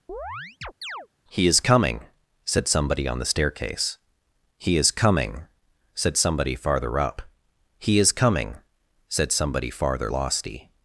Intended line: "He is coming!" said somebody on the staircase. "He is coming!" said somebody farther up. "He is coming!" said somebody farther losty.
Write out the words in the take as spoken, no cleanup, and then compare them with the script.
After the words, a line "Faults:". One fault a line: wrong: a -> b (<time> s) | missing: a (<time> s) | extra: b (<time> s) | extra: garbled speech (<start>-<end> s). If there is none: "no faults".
"He is coming!" said somebody on the staircase. "He is coming!" said somebody farther up. "He is coming!" said somebody farther losty.
Faults:
no faults